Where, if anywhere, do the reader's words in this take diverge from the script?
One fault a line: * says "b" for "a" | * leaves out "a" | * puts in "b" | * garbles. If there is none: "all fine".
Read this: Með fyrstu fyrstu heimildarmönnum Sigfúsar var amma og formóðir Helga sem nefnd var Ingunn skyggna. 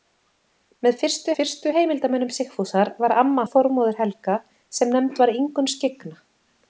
all fine